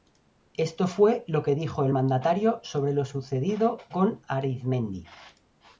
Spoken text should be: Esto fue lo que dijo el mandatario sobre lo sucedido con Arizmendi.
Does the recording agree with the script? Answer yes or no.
yes